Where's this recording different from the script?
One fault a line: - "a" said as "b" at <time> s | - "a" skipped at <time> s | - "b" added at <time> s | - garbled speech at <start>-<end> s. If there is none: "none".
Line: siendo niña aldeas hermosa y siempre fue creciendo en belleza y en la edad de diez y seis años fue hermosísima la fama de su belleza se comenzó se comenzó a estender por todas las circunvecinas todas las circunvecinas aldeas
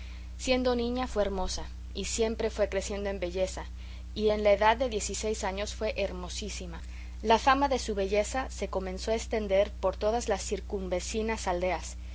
- "aldeas" said as "fue" at 1.1 s
- "se comenzó" skipped at 9.1 s
- "todas las circunvecinas" skipped at 11.5 s